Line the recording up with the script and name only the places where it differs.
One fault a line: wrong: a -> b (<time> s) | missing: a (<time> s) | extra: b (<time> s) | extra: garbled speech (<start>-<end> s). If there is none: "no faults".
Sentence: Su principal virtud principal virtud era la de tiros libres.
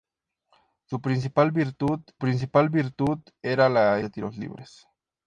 no faults